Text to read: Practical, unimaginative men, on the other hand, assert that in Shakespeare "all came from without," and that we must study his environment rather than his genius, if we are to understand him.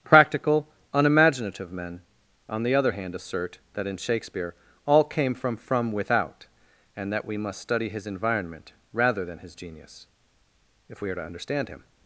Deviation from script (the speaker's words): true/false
true